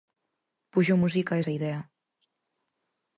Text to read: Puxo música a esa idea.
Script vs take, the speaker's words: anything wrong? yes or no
no